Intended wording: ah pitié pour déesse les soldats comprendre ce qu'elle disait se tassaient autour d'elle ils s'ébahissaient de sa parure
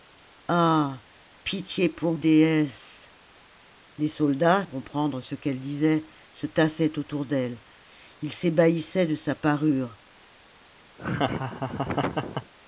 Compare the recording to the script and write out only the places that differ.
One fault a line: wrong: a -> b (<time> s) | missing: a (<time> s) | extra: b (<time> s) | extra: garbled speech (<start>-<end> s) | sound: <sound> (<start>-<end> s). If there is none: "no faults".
sound: laugh (11.0-12.5 s)